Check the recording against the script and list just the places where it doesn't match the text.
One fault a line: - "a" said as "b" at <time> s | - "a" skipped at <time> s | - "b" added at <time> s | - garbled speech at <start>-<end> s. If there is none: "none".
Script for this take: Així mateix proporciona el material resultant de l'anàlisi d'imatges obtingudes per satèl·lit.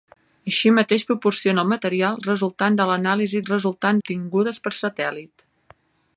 - "d'imatges" said as "resultant" at 3.5 s